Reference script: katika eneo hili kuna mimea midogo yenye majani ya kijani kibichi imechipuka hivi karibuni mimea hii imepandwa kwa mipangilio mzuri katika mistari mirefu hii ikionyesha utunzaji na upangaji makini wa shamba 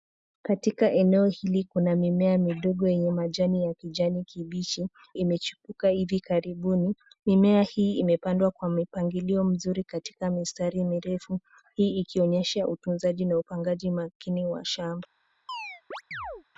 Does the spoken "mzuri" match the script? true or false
true